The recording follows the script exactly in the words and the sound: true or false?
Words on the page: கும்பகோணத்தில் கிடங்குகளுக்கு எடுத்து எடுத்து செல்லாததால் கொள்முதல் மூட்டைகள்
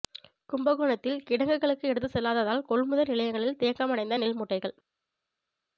false